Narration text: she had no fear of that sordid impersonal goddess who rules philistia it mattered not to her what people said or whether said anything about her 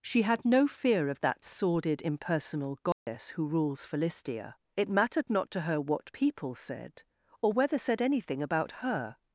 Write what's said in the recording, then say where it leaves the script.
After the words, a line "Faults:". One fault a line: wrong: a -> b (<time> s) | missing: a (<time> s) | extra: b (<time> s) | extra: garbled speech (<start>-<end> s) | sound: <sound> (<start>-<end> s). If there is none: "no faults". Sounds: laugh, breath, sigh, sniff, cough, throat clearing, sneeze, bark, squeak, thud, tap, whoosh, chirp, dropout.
she had no fear of that sordid impersonal goddess who rules philistia it mattered not to her what people said or whether said anything about her
Faults:
sound: dropout (2.9-3.1 s)